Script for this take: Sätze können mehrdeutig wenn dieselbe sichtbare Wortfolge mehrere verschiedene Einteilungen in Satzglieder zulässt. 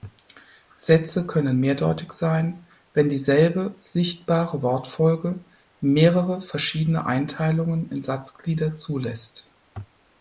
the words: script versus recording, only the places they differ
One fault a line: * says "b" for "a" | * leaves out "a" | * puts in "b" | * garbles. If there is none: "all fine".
* puts in "sein"